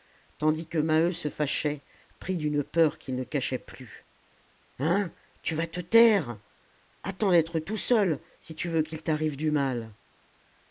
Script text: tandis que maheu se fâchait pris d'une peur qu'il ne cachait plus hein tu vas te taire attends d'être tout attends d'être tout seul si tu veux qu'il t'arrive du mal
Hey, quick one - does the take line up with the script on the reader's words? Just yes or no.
no